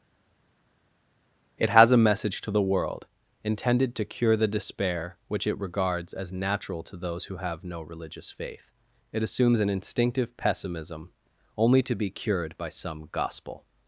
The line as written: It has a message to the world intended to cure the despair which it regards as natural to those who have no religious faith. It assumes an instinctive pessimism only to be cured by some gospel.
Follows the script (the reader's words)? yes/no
yes